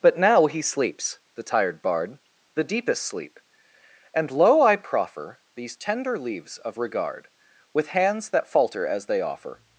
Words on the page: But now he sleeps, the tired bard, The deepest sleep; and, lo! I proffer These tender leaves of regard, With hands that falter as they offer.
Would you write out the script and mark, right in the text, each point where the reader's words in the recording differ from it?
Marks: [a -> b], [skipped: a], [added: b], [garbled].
But now he sleeps, the tired bard, The deepest sleep; and, lo! I proffer These tender leaves of regard, With hands that falter as they offer.